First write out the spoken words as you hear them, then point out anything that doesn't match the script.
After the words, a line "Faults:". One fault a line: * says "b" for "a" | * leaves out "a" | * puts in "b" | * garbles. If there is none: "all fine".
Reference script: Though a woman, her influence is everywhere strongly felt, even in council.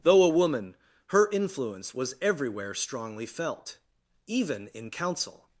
Though a woman, her influence was everywhere strongly felt, even in council.
Faults:
* says "was" for "is"